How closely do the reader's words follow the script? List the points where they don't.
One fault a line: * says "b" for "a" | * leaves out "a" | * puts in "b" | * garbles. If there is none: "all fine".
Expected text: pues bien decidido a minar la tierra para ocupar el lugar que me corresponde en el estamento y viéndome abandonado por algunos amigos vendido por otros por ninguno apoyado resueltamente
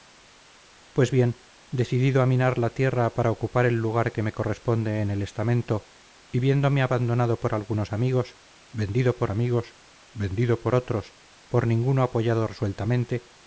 * puts in "amigos vendido por"